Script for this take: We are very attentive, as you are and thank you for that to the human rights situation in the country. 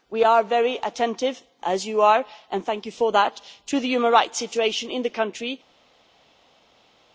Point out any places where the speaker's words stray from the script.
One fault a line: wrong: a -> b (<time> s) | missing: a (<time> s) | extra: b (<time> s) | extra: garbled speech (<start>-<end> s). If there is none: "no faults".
no faults